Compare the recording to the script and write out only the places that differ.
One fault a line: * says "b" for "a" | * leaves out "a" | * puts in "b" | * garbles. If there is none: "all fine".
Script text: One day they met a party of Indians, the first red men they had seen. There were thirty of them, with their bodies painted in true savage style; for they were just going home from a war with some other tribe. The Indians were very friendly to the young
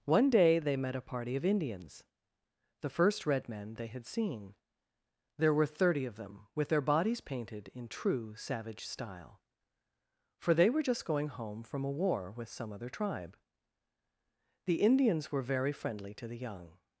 all fine